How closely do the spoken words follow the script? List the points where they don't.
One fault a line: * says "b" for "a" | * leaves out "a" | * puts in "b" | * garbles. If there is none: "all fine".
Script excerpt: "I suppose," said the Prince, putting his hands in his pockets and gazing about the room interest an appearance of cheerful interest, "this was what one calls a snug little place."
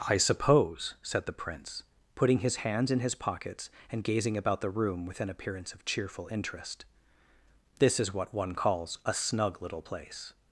* says "with" for "interest"
* says "is" for "was"